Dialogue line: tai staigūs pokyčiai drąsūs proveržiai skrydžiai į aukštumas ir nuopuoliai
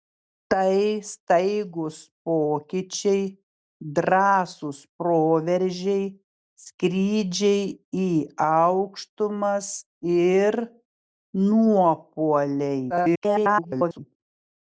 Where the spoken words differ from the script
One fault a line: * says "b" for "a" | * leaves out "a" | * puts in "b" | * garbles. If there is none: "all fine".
* garbles